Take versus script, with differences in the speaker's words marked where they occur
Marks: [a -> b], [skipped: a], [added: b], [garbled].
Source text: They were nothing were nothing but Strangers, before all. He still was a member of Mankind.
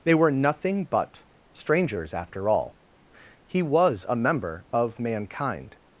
They were nothing [skipped: were nothing] but Strangers, [before -> after] all. He [skipped: still] was a member of Mankind.